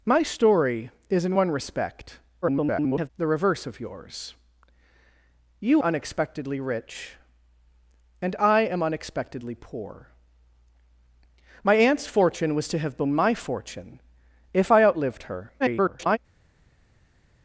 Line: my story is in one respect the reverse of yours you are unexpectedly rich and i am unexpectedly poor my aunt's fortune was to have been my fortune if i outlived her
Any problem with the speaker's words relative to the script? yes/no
yes